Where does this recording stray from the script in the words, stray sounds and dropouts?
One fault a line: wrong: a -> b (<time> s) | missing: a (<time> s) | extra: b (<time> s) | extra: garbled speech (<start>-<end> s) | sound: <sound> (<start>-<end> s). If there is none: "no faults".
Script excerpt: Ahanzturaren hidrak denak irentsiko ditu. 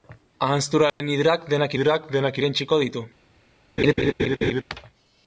sound: dropout (0.9-1.0 s)
extra: hidrak denak (1.7 s)
sound: laugh (3.8-4.6 s)